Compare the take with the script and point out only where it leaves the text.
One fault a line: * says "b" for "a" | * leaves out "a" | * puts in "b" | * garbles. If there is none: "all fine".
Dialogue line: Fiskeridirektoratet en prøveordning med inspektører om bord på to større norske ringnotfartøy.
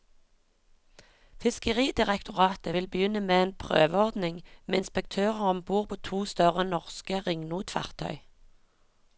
* puts in "vil begynne med"